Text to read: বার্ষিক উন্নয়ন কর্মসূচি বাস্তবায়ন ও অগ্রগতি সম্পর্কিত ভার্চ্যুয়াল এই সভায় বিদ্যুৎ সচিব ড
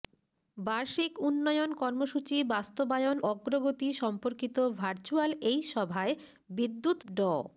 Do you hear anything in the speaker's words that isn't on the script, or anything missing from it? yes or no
yes